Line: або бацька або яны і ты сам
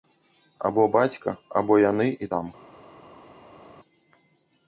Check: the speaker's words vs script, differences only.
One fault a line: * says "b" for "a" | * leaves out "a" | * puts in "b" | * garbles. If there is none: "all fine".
* leaves out "ты"